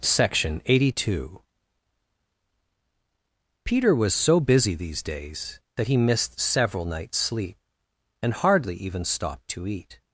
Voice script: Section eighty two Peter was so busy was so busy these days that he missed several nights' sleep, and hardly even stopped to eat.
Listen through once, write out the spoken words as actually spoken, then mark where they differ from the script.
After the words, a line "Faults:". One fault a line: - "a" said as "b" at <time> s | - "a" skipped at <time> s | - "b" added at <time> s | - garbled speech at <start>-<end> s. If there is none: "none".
Section eighty two Peter was so busy these days that he missed several nights' sleep, and hardly even stopped to eat.
Faults:
- "was so busy" skipped at 4.7 s